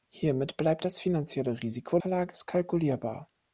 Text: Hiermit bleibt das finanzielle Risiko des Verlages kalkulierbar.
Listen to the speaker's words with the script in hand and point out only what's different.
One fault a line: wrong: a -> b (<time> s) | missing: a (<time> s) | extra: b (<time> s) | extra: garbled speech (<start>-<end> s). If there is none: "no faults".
missing: des (2.0 s)